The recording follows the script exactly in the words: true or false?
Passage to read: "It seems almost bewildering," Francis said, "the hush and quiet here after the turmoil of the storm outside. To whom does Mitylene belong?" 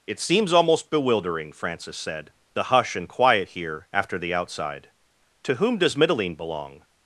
false